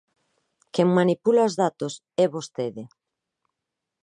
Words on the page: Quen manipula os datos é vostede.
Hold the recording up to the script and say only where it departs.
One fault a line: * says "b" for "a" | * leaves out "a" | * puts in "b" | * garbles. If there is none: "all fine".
all fine